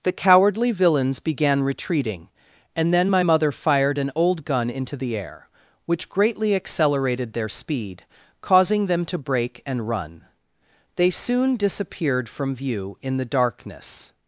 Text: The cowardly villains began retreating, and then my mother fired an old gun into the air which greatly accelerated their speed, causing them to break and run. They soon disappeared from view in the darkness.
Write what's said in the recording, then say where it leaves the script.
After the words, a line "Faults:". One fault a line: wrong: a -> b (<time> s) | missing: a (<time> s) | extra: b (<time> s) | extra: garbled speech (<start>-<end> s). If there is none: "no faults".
The cowardly villains began retreating, and then my mother fired an old gun into the air which greatly accelerated their speed, causing them to break and run. They soon disappeared from view in the darkness.
Faults:
no faults